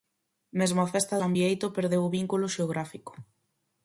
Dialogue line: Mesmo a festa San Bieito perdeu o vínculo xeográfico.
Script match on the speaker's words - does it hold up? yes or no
yes